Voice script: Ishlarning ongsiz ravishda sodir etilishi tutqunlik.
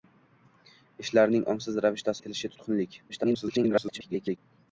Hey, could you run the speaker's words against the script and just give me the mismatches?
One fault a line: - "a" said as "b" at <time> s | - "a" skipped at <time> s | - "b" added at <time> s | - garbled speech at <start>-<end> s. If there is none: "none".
- "sodir" skipped at 2.2 s
- garbled speech at 3.1-4.4 s